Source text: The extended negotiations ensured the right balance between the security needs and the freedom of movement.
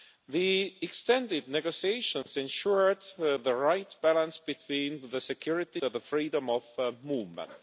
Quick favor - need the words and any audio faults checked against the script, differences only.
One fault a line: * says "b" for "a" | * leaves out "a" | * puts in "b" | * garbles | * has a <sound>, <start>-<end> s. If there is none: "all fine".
* has a dropout, 2.2-2.3 s
* leaves out "needs and"